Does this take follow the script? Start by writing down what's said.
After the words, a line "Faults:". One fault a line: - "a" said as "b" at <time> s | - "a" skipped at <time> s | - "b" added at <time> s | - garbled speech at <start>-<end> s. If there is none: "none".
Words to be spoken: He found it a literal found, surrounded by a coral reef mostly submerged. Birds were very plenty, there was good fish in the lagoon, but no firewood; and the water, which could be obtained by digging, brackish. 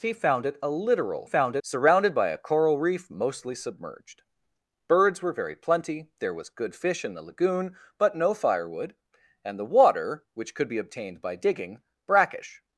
He found it a literal found, surrounded by a coral reef mostly submerged. Birds were very plenty, there was good fish in the lagoon, but no firewood; and the water, which could be obtained by digging, brackish.
Faults:
none